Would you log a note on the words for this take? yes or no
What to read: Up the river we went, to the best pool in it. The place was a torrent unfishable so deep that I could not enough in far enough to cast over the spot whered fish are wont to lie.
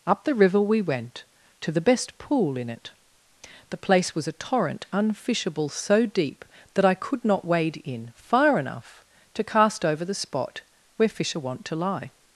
yes